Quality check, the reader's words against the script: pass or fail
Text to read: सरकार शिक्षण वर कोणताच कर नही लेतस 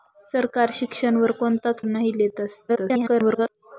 fail